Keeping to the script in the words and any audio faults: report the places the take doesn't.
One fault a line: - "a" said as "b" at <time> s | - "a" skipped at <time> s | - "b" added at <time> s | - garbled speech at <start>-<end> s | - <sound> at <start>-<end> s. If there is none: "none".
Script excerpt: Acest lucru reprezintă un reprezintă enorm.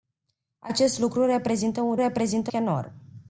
none